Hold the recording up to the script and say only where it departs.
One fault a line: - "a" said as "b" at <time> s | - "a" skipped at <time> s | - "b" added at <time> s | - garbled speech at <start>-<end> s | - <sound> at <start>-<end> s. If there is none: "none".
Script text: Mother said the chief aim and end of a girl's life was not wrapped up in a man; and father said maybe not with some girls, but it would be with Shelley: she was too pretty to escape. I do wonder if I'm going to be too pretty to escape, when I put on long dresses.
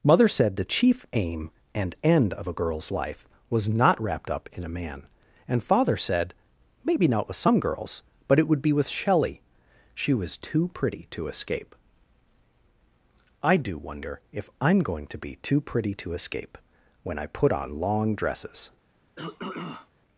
- throat clearing at 19.2-19.9 s